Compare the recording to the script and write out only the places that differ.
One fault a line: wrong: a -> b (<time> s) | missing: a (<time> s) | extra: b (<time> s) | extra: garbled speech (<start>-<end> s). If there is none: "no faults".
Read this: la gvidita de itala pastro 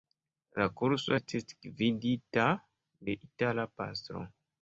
extra: kurso estis (0.8 s)